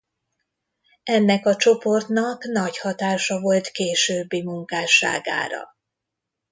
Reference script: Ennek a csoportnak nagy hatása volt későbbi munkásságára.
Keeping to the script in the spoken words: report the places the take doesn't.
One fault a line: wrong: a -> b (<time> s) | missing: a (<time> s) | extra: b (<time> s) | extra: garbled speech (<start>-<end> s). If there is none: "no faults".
no faults